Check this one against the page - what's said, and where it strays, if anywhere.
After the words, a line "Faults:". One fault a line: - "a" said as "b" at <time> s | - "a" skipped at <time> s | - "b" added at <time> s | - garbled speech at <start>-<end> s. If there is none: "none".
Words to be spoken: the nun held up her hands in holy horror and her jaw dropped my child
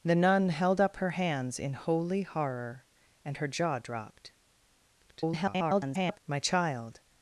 the nun held up her hands in holy horror and her jaw dropped [garbled] my child
Faults:
- garbled speech at 5.0-6.2 s